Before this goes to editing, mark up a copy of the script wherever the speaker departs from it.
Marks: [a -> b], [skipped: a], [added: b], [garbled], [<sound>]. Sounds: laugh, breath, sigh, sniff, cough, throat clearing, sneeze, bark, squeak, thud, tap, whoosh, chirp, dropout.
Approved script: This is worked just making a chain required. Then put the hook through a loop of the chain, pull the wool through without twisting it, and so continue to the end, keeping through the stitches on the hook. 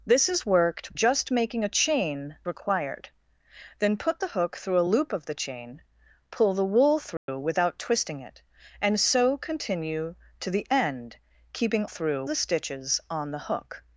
This is worked just making a chain required. Then put the hook through a loop of the chain, pull the wool through [dropout] without twisting it, and so continue to the end, keeping through the stitches on the hook.